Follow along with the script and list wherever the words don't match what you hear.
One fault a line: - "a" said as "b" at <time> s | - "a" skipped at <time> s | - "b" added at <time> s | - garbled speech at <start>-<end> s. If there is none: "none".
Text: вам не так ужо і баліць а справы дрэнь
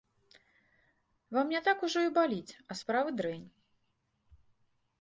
none